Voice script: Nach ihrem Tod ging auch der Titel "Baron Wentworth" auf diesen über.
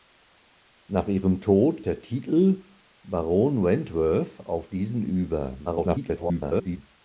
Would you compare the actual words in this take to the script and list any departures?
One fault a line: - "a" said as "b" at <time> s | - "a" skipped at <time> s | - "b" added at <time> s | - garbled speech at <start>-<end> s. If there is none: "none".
- "ging auch" skipped at 1.8 s
- garbled speech at 5.7-6.8 s